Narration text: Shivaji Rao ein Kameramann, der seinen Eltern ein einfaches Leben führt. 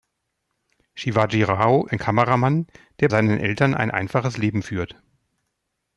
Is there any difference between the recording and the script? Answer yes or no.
no